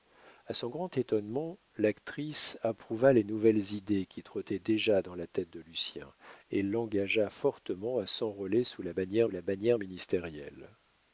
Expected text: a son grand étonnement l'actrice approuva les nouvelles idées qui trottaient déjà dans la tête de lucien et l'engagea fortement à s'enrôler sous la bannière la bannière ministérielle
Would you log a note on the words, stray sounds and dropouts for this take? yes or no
no